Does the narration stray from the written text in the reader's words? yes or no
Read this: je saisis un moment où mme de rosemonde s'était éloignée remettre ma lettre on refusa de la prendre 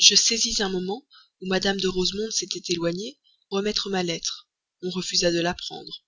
no